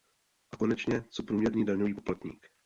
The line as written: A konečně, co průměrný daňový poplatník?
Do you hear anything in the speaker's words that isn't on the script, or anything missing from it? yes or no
no